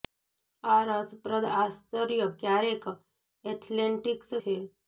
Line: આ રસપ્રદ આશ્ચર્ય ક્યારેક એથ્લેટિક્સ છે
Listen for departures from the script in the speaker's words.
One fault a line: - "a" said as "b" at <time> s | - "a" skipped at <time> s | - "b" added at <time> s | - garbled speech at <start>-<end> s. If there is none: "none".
none